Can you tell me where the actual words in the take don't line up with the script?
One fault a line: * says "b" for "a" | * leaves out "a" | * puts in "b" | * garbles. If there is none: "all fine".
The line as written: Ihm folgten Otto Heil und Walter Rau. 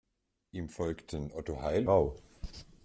* leaves out "und Walter"